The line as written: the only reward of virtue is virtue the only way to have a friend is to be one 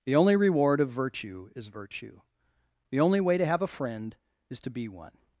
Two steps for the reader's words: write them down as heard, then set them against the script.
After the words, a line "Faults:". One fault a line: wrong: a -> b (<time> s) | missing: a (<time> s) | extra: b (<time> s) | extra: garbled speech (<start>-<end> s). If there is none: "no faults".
the only reward of virtue is virtue the only way to have a friend is to be one
Faults:
no faults